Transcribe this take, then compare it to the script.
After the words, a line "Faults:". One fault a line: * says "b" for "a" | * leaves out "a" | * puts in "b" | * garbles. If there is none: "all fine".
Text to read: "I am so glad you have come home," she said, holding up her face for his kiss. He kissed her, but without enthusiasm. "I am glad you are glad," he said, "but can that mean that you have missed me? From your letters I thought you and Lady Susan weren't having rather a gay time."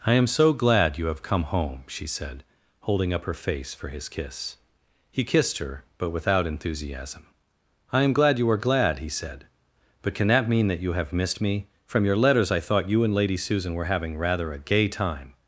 "I am so glad you have come home," she said, holding up her face for his kiss. He kissed her, but without enthusiasm. "I am glad you are glad," he said, "but can that mean that you have missed me? From your letters I thought you and Lady Susan were having rather a gay time."
Faults:
* says "were" for "weren't"